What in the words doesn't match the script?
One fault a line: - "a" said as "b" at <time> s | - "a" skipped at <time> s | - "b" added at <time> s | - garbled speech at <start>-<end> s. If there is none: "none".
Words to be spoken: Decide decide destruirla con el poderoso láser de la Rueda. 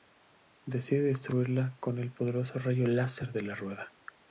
- "decide" skipped at 1.0 s
- "rayo" added at 2.6 s